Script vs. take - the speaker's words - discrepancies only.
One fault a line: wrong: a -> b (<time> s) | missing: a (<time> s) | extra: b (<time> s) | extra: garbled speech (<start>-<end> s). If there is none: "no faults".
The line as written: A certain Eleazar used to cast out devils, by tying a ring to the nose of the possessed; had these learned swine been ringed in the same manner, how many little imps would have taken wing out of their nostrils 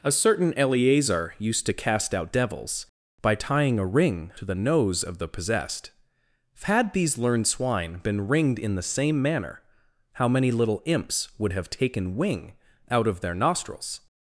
no faults